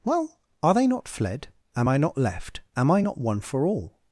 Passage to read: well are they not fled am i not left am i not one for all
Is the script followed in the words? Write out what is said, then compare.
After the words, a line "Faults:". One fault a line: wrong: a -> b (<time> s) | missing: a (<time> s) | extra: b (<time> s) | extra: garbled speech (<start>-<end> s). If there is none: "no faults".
well are they not fled am i not left am i not one for all
Faults:
no faults